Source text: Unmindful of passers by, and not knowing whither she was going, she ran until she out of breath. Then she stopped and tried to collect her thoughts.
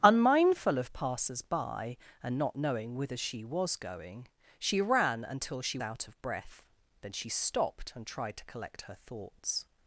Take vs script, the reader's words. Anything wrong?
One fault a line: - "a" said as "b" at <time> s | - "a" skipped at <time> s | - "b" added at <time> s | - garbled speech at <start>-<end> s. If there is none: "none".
none